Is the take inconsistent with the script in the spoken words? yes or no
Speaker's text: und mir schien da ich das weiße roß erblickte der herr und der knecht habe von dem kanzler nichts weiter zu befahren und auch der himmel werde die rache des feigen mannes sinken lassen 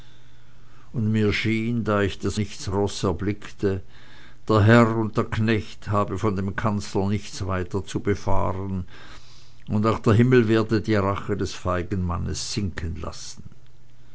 yes